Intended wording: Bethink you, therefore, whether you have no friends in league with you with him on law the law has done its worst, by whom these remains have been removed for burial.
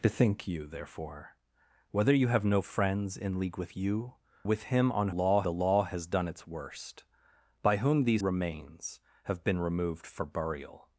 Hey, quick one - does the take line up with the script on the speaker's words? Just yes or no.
yes